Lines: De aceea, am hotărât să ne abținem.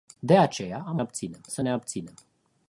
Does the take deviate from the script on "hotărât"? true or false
true